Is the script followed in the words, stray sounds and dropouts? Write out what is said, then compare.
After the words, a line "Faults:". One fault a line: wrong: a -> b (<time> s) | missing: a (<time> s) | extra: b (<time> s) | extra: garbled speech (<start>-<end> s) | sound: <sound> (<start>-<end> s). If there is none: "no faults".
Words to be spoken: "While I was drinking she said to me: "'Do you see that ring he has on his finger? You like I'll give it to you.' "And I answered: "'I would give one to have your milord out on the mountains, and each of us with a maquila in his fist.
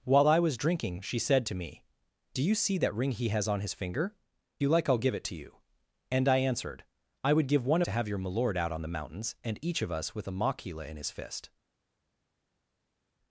"While I was drinking she said to me: "'Do you see that ring he has on his finger? You like I'll give it to you.' "And I answered: "'I would give one to have your milord out on the mountains, and each of us with a maquila in his fist.
Faults:
no faults